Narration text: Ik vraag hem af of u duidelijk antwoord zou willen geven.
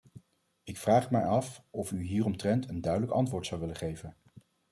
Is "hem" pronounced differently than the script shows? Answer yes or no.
yes